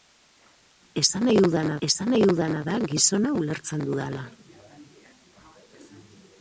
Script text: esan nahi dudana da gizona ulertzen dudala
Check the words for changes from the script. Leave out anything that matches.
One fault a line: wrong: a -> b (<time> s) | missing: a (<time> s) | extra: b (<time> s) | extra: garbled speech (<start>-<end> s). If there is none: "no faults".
extra: esan nahi dudana (1.9 s)